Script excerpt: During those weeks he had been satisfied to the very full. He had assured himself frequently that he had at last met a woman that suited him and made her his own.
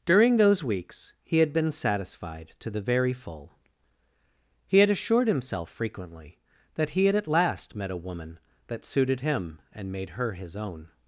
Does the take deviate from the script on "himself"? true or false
false